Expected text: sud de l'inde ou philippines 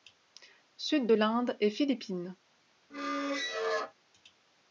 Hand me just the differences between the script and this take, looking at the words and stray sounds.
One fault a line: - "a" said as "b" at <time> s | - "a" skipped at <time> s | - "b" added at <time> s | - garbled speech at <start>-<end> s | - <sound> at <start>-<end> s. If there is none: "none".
- "ou" said as "et" at 1.6 s
- squeak at 2.9-3.9 s